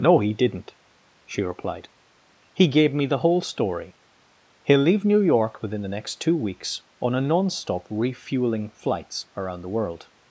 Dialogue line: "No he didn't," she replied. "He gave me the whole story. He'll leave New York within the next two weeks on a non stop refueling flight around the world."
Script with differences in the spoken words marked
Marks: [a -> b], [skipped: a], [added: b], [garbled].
"No he didn't," she replied. "He gave me the whole story. He'll leave New York within the next two weeks on a non stop refueling [flight -> flights] around the world."